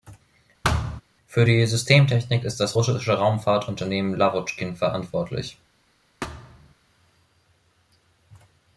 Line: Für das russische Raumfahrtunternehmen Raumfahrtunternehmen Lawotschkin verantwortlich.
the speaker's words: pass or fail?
fail